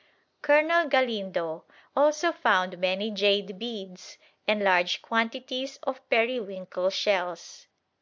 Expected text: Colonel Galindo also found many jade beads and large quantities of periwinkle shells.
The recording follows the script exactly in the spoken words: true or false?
true